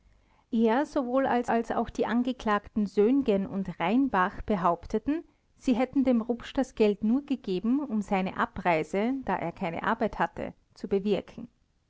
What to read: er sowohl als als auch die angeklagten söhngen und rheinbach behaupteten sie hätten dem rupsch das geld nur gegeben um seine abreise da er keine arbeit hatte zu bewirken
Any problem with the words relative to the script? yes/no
no